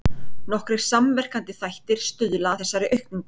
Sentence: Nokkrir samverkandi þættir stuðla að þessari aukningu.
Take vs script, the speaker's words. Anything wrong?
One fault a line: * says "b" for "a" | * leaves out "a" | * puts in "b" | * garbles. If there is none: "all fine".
* leaves out "að"